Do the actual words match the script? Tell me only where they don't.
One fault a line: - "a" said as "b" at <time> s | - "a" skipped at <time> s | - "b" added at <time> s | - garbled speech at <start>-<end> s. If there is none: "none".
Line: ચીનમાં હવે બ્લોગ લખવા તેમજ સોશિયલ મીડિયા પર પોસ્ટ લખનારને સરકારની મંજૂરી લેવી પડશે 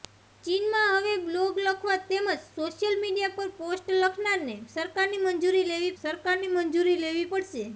- "સરકારની મંજૂરી લેવી" added at 6.0 s